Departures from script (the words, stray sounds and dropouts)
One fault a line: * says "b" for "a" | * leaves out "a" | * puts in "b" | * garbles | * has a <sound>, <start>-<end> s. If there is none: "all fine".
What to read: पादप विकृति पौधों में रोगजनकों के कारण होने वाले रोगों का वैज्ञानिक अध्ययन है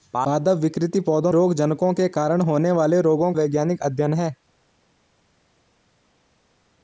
* leaves out "में"
* leaves out "का"